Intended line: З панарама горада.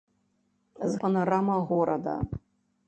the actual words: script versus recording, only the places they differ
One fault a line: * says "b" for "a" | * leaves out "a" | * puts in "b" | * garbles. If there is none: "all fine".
all fine